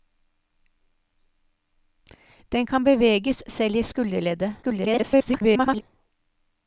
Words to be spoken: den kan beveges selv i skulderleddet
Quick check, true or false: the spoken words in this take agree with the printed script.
false